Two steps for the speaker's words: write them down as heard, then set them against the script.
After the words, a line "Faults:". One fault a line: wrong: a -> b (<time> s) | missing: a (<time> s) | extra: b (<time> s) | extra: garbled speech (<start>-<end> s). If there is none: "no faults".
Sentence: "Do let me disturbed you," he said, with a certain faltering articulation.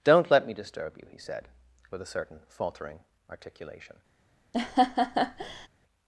"Don't let me disturb you," he said, with a certain faltering articulation.
Faults:
wrong: Do -> Don't (0.0 s)
wrong: disturbed -> disturb (0.5 s)